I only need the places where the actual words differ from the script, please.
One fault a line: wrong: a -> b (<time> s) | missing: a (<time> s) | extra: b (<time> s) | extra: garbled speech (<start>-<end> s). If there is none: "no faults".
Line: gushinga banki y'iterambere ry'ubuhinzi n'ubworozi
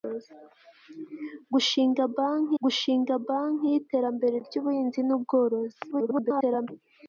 extra: gushinga banki (2.6 s)
extra: garbled speech (5.9-6.7 s)